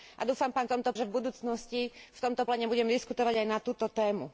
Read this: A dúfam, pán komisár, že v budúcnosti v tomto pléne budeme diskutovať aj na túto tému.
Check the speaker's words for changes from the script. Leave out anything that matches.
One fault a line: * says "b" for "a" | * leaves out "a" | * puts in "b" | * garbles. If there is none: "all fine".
* says "tomto" for "komisár"